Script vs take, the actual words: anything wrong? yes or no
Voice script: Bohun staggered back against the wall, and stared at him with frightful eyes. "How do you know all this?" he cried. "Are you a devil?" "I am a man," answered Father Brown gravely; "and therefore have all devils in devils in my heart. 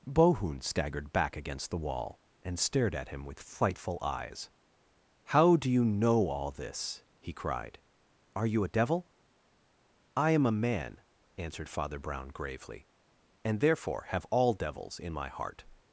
yes